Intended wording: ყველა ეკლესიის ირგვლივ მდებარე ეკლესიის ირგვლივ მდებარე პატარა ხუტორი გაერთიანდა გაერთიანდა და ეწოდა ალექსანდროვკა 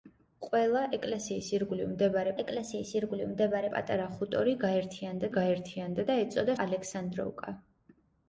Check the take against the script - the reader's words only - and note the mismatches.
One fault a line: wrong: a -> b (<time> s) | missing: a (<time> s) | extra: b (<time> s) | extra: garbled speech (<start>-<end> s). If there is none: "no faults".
no faults